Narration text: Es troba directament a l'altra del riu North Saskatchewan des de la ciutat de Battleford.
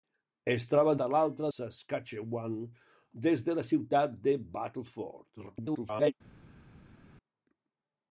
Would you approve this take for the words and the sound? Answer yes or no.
no